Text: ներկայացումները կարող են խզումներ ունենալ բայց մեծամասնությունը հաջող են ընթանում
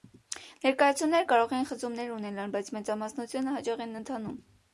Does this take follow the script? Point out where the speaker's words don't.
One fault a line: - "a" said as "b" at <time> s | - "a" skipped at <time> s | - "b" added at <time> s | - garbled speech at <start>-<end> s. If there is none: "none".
none